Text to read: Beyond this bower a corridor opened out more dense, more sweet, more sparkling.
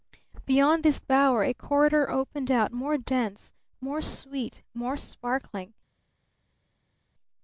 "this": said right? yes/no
yes